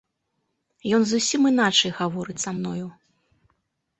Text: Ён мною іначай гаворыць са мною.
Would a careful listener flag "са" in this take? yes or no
no